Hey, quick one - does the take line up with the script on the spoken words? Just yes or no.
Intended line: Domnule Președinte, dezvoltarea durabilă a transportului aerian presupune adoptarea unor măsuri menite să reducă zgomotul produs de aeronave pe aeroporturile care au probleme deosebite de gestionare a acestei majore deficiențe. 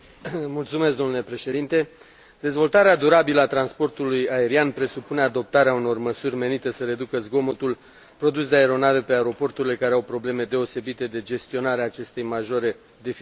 yes